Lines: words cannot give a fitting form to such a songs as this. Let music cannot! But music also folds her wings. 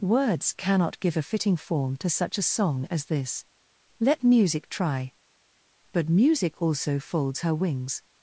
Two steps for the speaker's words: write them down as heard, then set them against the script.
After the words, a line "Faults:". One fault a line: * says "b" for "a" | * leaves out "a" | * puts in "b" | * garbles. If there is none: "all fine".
words cannot give a fitting form to such a song as this. Let music try! But music also folds her wings.
Faults:
* says "song" for "songs"
* says "try" for "cannot"